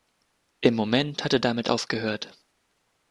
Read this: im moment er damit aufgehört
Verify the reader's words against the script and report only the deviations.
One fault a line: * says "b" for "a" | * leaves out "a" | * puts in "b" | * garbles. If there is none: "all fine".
* puts in "hat"